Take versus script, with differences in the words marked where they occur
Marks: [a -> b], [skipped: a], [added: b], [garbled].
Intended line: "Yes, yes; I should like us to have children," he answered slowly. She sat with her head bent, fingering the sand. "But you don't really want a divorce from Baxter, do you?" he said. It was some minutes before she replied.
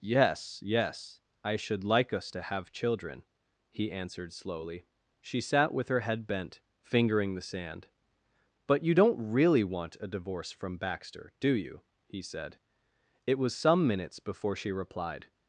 "Yes, yes; I should like us to have children," he answered slowly. She sat with her head bent, fingering the sand. "But you don't really want a divorce from Baxter, do you?" he said. It was some minutes before she replied.